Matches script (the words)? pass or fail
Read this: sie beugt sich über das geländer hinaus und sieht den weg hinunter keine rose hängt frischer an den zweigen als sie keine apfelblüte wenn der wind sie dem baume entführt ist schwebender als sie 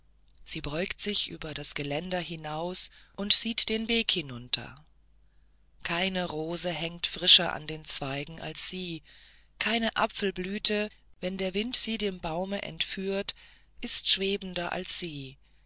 pass